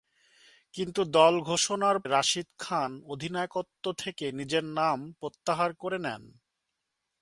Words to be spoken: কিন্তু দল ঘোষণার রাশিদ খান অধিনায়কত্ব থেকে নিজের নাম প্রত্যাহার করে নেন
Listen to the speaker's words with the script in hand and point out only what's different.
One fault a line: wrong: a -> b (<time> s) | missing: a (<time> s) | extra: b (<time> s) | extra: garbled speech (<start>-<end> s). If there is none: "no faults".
no faults